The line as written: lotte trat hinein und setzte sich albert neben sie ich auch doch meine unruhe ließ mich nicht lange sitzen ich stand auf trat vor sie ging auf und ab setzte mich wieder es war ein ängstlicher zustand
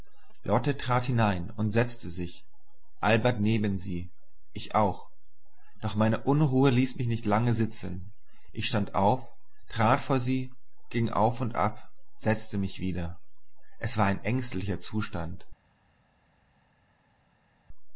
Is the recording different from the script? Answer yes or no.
no